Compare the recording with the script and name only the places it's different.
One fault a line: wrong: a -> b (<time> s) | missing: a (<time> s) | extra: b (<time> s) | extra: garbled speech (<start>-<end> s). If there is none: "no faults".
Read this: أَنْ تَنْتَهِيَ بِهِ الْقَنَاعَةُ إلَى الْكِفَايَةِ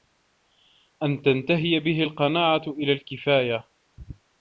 no faults